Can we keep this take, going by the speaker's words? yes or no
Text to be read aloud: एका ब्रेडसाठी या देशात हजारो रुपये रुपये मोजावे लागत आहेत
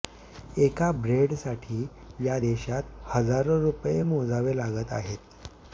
no